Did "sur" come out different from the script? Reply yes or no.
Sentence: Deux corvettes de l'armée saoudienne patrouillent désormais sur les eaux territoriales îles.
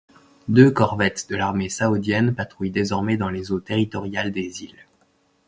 yes